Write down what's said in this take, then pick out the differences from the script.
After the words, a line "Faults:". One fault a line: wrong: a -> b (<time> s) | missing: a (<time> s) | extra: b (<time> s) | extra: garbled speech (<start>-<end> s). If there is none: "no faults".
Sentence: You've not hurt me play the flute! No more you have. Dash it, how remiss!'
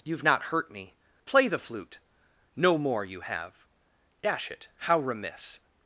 You've not hurt me play the flute! No more you have. Dash it, how remiss!'
Faults:
no faults